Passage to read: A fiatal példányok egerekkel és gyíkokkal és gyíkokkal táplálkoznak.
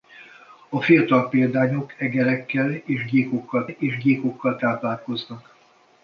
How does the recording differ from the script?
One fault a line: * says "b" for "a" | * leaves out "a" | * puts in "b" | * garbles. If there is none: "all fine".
all fine